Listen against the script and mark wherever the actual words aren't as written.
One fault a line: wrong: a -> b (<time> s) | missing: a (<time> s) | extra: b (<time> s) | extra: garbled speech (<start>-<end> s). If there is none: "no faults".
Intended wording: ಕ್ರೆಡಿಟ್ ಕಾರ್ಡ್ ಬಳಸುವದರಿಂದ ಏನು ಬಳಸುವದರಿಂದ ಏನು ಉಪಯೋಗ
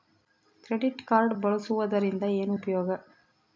missing: ಬಳಸುವದರಿಂದ ಏನು (2.5 s)